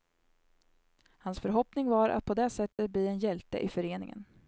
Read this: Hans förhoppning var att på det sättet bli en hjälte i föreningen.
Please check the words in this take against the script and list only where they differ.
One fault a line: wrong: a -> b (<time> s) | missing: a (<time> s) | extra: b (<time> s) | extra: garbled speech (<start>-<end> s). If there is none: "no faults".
no faults